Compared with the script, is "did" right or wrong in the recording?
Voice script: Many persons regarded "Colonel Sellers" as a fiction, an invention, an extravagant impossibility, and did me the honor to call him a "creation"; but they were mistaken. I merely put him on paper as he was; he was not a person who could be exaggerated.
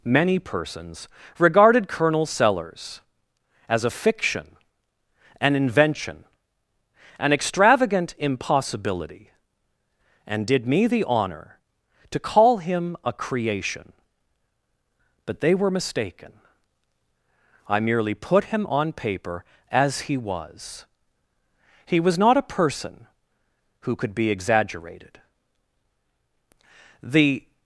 right